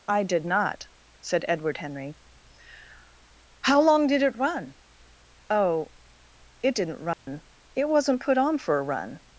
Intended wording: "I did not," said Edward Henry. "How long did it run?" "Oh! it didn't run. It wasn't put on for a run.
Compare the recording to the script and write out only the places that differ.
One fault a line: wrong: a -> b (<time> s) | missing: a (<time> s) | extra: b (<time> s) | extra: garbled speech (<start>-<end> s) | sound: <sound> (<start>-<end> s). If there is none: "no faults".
sound: dropout (7.1-7.3 s)